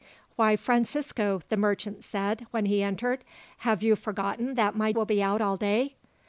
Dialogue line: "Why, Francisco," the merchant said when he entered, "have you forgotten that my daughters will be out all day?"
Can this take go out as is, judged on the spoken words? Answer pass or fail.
fail